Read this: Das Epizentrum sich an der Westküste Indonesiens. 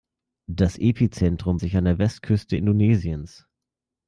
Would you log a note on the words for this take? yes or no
no